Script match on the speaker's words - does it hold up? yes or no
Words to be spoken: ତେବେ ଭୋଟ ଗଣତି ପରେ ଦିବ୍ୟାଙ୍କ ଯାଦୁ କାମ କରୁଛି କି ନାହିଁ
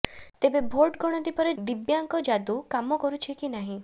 yes